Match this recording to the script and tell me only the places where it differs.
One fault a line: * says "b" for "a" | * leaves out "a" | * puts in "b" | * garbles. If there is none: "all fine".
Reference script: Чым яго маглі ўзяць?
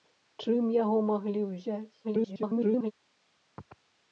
* garbles